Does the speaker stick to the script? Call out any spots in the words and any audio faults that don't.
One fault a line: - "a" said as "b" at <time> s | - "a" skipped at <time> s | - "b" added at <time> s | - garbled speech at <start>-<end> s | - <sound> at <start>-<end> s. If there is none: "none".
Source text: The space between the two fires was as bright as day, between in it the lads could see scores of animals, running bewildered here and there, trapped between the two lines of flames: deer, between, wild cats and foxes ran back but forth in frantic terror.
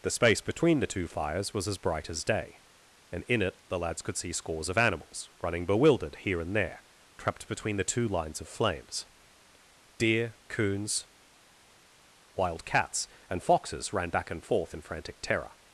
- "between" said as "and" at 3.1 s
- "between" said as "coons" at 10.5 s
- "but" said as "and" at 14.3 s